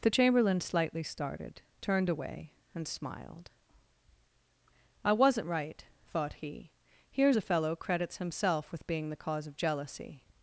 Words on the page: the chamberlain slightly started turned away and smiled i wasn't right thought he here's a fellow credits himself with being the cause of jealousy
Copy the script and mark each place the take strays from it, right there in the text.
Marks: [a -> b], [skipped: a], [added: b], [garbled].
the chamberlain slightly started turned away and smiled i wasn't right thought he here's a fellow credits himself with being the cause of jealousy